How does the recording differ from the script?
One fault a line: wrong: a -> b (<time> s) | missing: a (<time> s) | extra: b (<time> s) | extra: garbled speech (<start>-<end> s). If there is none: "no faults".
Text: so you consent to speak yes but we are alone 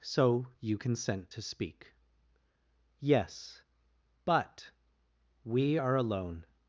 no faults